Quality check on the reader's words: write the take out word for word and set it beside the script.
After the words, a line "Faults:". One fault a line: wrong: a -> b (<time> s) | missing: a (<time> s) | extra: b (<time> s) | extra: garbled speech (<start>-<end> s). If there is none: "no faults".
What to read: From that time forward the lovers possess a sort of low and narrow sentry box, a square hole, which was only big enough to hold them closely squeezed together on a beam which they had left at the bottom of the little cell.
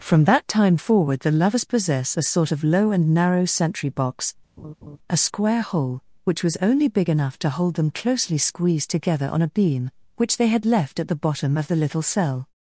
From that time forward the lovers possess a sort of low and narrow sentry box, a square hole, which was only big enough to hold them closely squeezed together on a beam which they had left at the bottom of the little cell.
Faults:
no faults